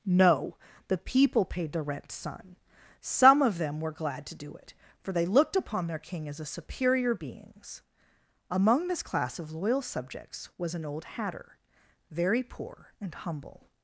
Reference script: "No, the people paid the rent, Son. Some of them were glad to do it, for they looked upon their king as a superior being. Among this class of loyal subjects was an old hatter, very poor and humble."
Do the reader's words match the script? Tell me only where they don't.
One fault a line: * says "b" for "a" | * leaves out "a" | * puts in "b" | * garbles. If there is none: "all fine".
* says "beings" for "being"